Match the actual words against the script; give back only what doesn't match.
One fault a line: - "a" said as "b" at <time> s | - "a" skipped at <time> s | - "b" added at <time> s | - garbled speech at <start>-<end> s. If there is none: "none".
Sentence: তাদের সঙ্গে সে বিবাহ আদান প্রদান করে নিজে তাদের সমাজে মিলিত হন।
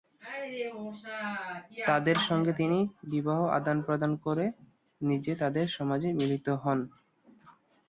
- "সে" said as "তিনি" at 2.5 s